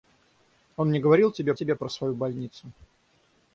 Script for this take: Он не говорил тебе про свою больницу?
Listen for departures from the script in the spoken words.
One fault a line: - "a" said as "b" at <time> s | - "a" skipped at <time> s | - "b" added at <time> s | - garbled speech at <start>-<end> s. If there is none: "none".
- "тебе" added at 1.5 s